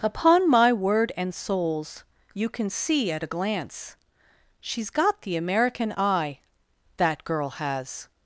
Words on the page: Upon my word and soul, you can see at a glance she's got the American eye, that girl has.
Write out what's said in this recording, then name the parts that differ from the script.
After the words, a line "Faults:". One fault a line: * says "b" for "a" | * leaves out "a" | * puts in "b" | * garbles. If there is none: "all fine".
Upon my word and souls, you can see at a glance she's got the American eye, that girl has.
Faults:
* says "souls" for "soul"